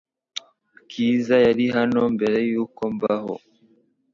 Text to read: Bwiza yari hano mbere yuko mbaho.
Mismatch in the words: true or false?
false